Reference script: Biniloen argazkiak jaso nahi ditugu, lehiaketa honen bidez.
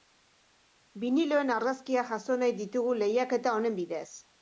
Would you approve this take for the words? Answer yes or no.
yes